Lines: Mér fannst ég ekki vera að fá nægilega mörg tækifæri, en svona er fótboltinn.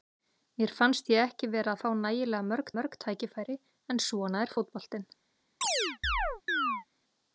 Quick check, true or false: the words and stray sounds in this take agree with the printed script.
false